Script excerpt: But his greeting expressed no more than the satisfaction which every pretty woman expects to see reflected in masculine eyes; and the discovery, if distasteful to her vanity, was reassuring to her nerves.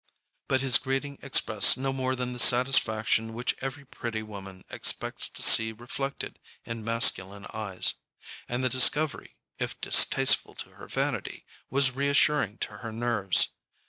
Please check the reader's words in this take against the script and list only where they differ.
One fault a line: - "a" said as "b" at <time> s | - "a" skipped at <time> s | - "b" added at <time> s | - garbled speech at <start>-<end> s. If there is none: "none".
none